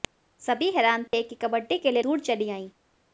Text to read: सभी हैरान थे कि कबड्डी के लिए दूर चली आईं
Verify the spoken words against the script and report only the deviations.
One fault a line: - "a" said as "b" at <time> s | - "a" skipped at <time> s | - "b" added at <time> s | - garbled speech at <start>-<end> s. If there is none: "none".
none